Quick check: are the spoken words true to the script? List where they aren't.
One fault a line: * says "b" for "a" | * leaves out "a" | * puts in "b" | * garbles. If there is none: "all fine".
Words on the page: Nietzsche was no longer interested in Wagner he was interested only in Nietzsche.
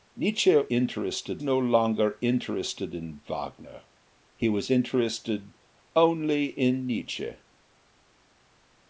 * says "interested" for "was"